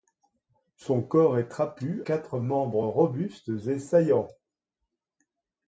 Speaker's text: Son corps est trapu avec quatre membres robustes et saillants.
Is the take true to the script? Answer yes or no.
no